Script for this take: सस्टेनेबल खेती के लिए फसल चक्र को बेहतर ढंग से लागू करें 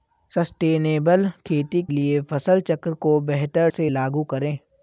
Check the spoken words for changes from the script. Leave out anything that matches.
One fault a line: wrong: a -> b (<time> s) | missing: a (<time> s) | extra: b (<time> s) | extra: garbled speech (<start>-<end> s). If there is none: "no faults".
missing: के (1.8 s)
missing: ढंग (3.7 s)